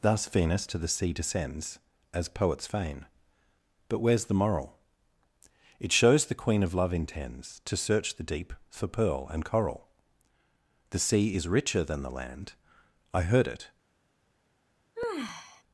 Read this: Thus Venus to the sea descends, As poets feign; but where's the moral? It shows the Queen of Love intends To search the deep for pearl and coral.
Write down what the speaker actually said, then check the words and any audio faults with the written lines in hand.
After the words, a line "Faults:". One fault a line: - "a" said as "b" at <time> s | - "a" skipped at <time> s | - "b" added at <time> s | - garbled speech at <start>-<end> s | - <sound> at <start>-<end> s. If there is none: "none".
Thus Venus to the sea descends, As poets feign; but where's the moral? It shows the Queen of Love intends To search the deep for pearl and coral. The sea is richer than the land, I heard it
Faults:
- "The sea is richer than the land I heard it" added at 10.9 s
- sigh at 15.0-15.6 s